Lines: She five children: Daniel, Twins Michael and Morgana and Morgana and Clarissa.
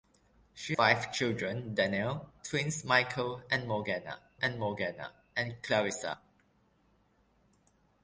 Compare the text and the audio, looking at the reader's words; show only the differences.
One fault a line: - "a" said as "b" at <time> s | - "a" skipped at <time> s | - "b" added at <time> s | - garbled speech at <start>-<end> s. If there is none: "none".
none